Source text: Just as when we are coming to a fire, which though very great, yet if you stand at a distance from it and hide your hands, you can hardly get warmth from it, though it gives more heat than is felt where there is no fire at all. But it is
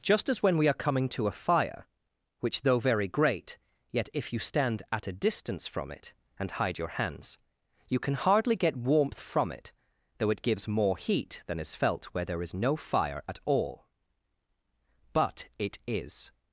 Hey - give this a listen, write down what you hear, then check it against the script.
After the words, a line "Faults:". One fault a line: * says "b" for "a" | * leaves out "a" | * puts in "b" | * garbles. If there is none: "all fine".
Just as when we are coming to a fire, which though very great, yet if you stand at a distance from it and hide your hands, you can hardly get warmth from it, though it gives more heat than is felt where there is no fire at all. But it is
Faults:
all fine